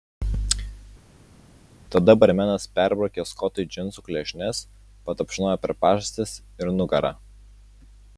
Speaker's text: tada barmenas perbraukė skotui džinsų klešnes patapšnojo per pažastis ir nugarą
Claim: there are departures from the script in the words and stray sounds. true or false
false